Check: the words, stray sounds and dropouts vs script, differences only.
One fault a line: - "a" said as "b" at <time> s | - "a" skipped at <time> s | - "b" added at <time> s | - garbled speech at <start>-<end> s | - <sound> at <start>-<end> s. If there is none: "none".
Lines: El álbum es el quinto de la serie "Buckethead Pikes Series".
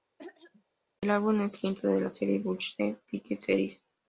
- throat clearing at 0.2-0.6 s